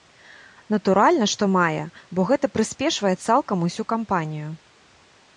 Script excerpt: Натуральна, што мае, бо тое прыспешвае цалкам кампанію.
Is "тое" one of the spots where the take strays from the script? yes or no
yes